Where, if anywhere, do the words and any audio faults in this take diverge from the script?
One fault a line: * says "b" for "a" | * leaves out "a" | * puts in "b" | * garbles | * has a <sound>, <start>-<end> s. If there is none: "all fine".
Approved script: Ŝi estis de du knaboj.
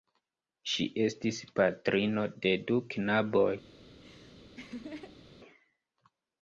* puts in "patrino"
* has a laugh, 3.9-5.4 s